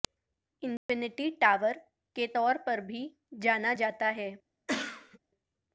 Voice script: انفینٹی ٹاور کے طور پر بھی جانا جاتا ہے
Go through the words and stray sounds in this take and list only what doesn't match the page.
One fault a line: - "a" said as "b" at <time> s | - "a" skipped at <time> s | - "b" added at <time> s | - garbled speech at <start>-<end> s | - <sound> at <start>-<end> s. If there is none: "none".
- dropout at 0.8-0.9 s
- cough at 4.7-5.2 s